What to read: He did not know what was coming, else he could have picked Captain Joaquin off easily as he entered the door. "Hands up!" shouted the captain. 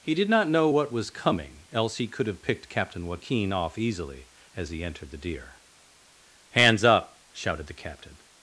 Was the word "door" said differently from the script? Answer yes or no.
yes